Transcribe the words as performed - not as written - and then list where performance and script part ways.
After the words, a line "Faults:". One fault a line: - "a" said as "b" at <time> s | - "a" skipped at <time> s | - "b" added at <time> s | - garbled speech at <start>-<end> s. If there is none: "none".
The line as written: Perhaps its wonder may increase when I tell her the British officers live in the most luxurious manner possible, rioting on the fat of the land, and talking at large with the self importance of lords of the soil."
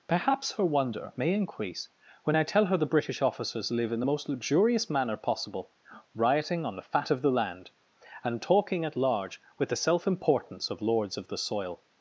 Perhaps her wonder may increase when I tell her the British officers live in the most luxurious manner possible, rioting on the fat of the land, and talking at large with the self importance of lords of the soil."
Faults:
- "its" said as "her" at 0.5 s